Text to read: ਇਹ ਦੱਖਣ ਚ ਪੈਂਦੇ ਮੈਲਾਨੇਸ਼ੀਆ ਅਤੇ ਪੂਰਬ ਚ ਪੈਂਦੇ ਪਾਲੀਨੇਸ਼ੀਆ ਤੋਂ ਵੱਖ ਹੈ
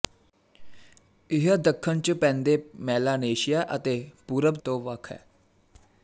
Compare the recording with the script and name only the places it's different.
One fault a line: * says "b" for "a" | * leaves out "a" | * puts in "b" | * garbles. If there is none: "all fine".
* leaves out "ਚ ਪੈਂਦੇ ਪਾਲੀਨੇਸ਼ੀਆ"